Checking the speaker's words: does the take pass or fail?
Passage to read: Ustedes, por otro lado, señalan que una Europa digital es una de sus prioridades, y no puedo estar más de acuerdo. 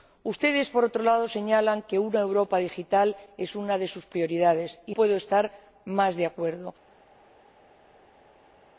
fail